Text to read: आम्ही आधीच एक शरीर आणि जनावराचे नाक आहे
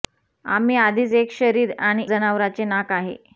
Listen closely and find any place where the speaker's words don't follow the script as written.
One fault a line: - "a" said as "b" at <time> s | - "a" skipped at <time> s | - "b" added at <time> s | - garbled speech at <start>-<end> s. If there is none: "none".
none